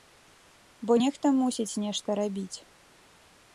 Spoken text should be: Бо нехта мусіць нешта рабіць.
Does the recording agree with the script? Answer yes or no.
yes